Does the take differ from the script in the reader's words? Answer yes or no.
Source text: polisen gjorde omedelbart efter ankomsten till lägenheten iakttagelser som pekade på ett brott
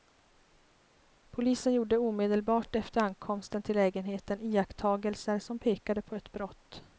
no